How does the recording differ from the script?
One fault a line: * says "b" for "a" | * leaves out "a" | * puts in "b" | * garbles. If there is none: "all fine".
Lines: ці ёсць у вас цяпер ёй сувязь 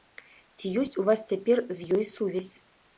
* puts in "з"